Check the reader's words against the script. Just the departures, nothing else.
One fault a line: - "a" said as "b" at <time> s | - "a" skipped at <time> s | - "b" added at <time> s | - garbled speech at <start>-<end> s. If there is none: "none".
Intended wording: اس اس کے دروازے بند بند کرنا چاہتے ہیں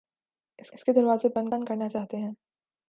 none